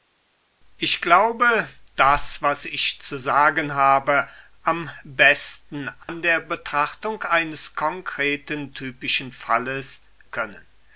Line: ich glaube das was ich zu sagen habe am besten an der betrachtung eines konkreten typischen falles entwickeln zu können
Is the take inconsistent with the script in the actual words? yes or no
yes